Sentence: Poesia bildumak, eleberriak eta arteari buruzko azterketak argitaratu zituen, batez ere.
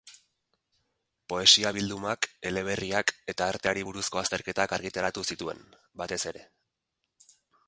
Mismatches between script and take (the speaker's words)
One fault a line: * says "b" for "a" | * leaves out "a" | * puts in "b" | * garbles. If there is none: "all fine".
all fine